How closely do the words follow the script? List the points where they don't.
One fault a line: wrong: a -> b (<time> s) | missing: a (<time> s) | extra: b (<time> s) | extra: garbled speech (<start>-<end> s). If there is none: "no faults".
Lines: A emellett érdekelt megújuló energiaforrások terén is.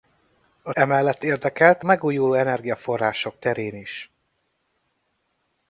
no faults